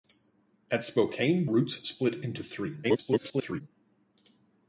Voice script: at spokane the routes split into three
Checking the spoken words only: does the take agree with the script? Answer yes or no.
no